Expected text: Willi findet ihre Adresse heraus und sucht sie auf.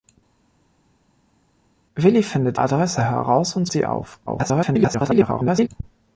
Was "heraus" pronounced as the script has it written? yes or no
yes